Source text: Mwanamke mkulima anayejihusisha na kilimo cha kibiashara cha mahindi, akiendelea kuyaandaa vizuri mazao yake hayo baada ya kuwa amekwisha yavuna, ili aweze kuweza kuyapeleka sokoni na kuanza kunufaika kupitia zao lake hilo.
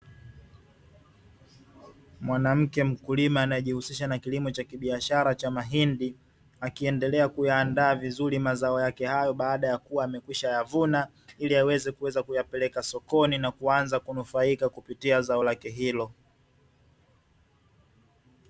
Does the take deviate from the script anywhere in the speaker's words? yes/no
no